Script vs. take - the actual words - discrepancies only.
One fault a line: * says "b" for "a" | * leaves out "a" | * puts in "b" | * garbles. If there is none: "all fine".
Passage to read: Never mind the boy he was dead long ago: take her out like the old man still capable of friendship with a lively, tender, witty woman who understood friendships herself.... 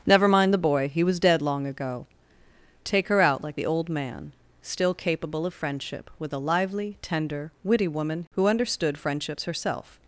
all fine